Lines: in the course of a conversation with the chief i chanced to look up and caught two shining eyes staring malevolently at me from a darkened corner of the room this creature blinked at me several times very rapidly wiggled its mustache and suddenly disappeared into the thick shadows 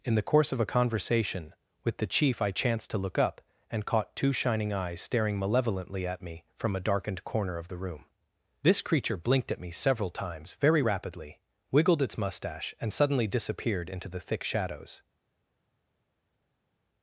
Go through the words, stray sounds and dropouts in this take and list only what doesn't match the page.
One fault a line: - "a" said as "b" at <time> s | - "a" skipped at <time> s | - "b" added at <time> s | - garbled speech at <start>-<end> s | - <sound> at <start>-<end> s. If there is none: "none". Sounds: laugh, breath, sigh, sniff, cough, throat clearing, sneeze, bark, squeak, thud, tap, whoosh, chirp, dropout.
none